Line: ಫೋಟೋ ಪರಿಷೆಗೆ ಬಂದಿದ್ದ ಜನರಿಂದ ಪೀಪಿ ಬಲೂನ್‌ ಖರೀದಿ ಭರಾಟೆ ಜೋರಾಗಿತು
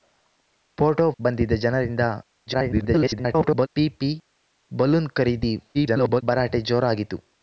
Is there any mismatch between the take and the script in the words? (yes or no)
yes